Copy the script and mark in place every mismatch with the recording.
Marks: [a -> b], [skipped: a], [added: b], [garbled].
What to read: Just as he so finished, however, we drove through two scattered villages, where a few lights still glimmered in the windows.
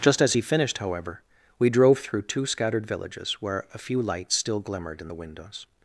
Just as he [skipped: so] finished, however, we drove through two scattered villages, where a few lights still glimmered in the windows.